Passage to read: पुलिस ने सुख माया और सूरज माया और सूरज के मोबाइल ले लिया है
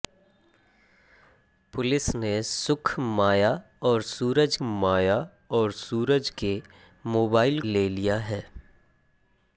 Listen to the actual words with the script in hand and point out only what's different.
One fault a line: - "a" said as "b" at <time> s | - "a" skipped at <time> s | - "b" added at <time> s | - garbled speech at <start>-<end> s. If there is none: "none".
none